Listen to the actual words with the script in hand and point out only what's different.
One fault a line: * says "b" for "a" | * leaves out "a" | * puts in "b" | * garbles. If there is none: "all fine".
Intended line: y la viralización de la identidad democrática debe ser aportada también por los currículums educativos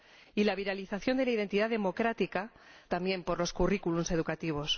* leaves out "debe ser aportada"